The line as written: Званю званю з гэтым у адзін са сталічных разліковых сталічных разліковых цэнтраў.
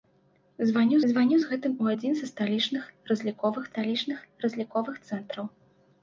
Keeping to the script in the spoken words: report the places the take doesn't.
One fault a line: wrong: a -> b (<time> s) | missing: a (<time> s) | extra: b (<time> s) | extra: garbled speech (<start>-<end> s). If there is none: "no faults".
no faults